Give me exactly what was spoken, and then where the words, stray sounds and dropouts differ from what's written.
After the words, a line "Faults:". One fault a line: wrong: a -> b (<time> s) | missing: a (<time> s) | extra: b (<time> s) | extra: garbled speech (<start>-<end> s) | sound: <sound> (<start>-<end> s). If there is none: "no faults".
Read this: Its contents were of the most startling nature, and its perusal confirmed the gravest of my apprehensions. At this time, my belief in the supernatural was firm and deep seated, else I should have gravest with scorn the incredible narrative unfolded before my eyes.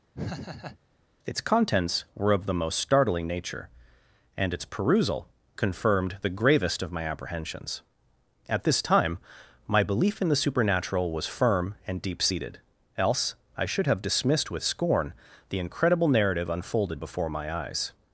Its contents were of the most startling nature, and its perusal confirmed the gravest of my apprehensions. At this time, my belief in the supernatural was firm and deep seated, else I should have dismissed with scorn the incredible narrative unfolded before my eyes.
Faults:
sound: laugh (0.1-0.8 s)
wrong: gravest -> dismissed (14.0 s)